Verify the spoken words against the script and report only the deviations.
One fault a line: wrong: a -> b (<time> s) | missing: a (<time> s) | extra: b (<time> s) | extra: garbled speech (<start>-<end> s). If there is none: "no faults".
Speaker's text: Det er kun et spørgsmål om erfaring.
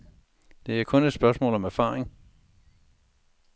no faults